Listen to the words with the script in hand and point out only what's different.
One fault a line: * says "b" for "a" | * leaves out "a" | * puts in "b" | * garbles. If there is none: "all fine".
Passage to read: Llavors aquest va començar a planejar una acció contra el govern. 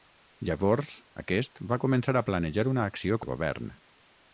* leaves out "contra"